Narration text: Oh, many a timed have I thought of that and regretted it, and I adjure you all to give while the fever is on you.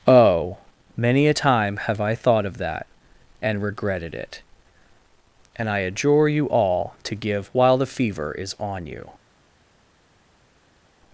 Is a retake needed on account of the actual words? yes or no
yes